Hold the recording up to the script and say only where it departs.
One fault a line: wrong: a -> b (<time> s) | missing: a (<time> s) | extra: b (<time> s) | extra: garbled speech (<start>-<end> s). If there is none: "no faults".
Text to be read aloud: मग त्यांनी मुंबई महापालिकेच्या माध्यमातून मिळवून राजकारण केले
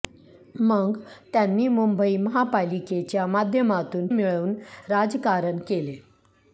no faults